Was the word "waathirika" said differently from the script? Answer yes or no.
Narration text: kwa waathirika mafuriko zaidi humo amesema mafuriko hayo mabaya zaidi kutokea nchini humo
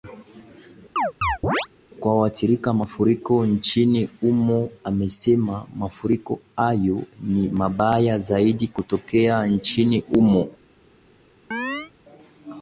no